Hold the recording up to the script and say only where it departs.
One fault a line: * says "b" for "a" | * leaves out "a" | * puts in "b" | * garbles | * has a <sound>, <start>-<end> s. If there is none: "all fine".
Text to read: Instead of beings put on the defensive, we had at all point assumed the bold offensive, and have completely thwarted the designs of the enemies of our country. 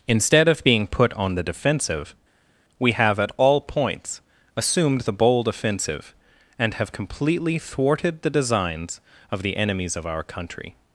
* says "being" for "beings"
* says "have" for "had"
* says "points" for "point"